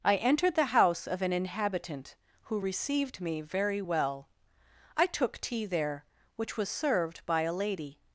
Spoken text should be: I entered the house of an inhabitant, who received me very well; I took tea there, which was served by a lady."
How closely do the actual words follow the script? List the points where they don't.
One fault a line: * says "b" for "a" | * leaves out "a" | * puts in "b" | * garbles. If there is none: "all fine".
all fine